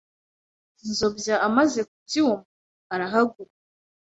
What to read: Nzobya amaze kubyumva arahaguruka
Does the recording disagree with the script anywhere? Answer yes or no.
no